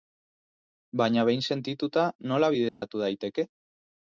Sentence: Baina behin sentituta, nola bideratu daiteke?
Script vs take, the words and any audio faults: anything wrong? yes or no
yes